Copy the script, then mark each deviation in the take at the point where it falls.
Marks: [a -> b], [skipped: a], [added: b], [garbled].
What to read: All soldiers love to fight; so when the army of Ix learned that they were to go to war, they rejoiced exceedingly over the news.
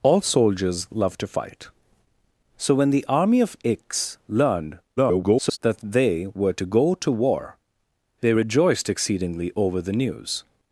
All soldiers love to fight; so when the army of Ix learned [garbled] that they were to go to war, they rejoiced exceedingly over the news.